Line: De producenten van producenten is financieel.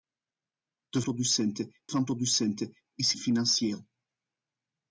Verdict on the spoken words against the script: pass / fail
pass